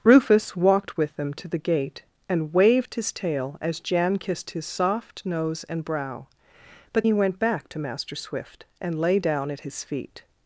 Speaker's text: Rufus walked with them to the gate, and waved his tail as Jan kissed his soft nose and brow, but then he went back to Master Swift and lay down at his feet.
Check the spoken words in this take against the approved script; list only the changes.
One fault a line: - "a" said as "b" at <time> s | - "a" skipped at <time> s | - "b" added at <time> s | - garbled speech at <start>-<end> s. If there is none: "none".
- "then" skipped at 7.0 s